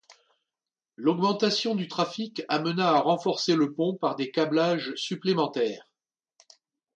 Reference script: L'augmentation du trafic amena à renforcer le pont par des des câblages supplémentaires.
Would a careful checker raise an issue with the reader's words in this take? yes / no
yes